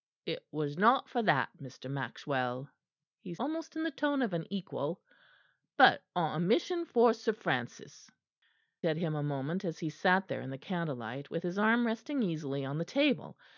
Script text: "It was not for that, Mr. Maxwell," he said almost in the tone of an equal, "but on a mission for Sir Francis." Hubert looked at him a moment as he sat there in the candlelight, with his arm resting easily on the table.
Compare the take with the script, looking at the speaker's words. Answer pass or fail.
fail